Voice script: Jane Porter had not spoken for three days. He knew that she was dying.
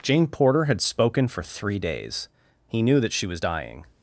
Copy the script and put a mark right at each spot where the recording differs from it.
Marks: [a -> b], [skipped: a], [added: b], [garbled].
Jane Porter had [skipped: not] spoken for three days. He knew that she was dying.